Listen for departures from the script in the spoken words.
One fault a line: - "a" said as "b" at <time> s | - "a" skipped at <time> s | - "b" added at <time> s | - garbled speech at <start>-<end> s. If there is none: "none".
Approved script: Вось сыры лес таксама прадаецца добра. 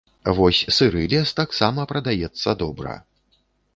none